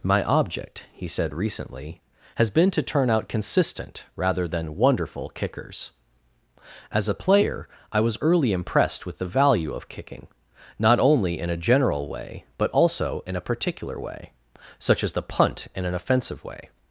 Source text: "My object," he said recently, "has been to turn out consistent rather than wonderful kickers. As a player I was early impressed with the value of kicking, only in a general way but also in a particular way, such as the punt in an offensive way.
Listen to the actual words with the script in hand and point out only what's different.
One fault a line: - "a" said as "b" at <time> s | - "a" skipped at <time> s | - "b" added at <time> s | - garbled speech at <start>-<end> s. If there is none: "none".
- "not" added at 10.8 s